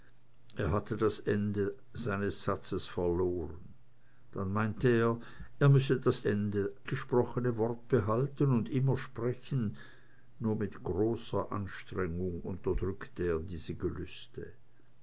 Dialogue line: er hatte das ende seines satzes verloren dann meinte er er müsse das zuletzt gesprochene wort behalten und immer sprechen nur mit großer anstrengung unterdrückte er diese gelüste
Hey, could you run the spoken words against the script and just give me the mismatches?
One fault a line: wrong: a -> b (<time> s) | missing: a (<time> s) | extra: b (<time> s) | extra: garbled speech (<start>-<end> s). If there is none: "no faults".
wrong: zuletzt -> ende (6.2 s)